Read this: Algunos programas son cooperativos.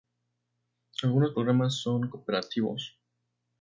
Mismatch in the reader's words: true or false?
false